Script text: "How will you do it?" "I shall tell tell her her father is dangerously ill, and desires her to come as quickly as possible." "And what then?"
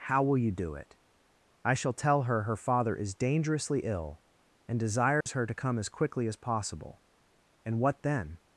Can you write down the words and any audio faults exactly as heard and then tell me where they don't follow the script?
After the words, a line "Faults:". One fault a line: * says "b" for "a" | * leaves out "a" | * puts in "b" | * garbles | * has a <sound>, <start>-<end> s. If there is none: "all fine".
"How will you do it?" "I shall tell her her father is dangerously ill, and desires her to come as quickly as possible." "And what then?"
Faults:
* leaves out "tell"
* has a dropout, 5.2-5.3 s